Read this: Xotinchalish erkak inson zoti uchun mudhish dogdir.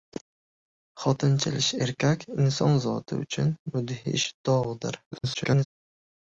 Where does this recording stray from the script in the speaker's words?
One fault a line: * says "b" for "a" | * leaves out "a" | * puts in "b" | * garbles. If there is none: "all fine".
* garbles